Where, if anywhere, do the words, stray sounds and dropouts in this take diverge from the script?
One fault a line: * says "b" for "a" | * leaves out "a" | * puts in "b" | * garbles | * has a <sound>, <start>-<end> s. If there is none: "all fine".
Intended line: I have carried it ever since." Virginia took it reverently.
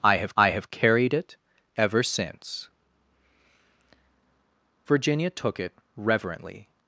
* puts in "I have"